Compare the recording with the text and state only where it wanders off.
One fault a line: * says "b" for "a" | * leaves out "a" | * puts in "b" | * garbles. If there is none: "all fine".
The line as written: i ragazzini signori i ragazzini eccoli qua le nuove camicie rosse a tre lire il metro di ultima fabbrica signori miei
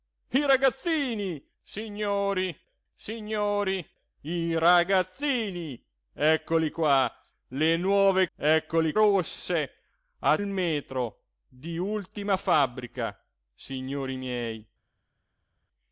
* puts in "signori"
* says "eccoli" for "camicie"
* leaves out "tre lire"